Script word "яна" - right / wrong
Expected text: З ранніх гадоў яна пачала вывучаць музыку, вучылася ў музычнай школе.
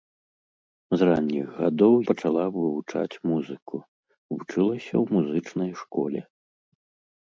wrong